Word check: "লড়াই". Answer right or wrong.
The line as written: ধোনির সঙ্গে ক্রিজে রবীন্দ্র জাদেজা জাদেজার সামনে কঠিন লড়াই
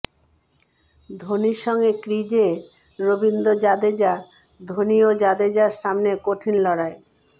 right